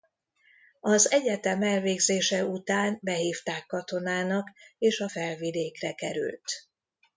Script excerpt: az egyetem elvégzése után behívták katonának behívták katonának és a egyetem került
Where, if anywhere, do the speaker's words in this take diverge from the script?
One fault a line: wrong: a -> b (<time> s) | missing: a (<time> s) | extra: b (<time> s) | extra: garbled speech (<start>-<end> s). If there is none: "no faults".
missing: behívták katonának (4.5 s)
wrong: egyetem -> felvidékre (5.1 s)